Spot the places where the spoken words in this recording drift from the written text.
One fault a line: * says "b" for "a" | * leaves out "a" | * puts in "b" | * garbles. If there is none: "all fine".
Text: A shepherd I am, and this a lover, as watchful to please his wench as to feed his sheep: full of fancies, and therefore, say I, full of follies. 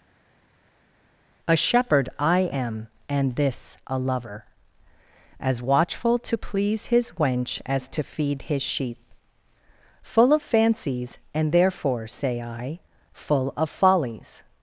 all fine